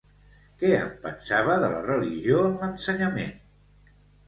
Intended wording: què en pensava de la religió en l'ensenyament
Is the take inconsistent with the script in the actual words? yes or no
no